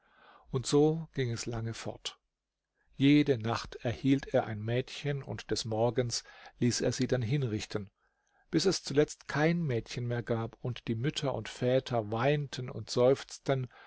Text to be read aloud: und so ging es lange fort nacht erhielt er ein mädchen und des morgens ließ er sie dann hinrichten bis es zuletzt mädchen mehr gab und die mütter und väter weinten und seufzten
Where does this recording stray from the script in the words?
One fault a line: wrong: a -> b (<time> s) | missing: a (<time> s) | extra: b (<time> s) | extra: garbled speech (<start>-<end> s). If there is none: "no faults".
extra: jede (3.0 s)
extra: kein (9.3 s)